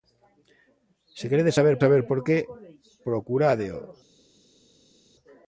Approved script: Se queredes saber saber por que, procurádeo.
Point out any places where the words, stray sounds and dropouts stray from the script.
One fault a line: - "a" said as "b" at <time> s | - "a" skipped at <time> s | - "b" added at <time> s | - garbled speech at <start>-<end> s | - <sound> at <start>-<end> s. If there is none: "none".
none